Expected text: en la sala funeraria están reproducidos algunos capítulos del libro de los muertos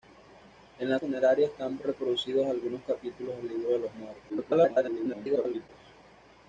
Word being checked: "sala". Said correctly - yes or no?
no